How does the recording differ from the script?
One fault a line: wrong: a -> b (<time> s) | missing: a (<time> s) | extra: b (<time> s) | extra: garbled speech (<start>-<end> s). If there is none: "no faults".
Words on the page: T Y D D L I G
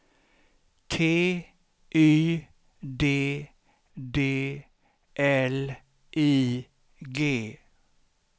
no faults